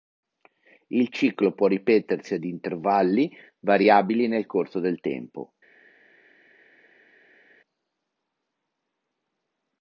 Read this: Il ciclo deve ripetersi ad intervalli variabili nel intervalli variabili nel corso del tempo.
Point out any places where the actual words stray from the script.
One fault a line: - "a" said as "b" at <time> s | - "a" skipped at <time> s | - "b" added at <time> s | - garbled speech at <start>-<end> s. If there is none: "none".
- "deve" said as "può" at 1.5 s
- "intervalli variabili nel" skipped at 4.5 s